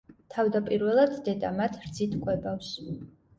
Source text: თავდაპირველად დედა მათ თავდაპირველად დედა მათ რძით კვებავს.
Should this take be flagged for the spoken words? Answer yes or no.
yes